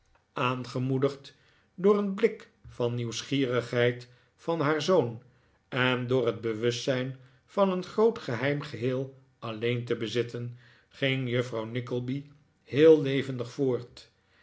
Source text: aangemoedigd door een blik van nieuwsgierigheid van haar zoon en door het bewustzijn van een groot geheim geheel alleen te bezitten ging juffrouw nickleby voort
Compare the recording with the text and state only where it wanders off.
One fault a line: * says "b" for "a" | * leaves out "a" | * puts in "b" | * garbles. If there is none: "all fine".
* puts in "heel levendig"